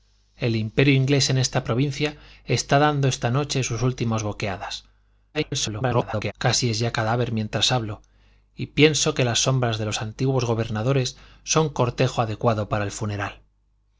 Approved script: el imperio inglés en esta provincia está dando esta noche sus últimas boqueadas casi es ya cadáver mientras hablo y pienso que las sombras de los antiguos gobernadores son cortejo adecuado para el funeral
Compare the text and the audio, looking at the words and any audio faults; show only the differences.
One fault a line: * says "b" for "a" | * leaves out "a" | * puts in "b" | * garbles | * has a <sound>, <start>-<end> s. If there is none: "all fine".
* garbles